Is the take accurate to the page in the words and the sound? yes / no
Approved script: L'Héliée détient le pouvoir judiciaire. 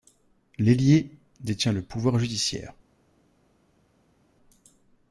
yes